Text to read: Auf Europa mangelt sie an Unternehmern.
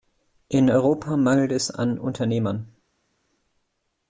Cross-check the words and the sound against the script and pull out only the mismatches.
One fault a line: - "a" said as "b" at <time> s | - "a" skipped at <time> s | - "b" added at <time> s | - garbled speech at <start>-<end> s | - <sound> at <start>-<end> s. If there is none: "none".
- "Auf" said as "In" at 0.5 s
- "sie" said as "es" at 1.5 s